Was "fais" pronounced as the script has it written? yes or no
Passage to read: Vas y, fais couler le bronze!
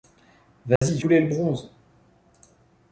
no